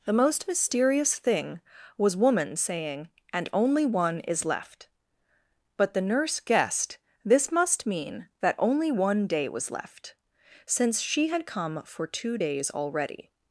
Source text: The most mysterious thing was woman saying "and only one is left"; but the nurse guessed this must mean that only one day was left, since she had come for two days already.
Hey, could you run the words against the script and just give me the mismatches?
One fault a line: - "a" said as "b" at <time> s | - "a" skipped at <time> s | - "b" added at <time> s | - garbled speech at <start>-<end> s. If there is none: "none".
none